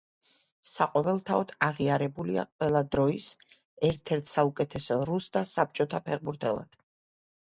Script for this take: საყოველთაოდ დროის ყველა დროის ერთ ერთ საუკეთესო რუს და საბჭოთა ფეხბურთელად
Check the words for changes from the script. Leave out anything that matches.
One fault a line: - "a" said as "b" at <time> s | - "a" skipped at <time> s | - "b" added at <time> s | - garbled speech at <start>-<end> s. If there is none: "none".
- "დროის" said as "აღიარებულია" at 1.6 s